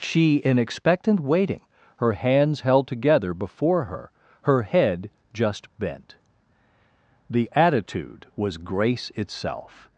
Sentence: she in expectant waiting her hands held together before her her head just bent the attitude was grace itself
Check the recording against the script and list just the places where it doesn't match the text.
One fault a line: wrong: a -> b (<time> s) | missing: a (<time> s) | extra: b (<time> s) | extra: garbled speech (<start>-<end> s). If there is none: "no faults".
no faults